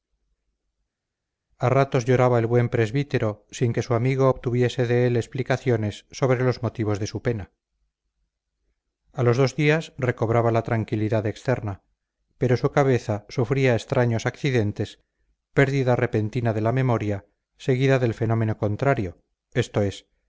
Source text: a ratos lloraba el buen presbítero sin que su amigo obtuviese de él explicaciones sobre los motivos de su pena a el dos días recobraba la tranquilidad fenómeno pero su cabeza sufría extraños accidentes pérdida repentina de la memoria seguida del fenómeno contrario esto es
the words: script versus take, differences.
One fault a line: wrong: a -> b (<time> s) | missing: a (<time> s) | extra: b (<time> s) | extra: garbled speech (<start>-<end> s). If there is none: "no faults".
wrong: el -> los (9.2 s)
wrong: fenómeno -> externa (11.3 s)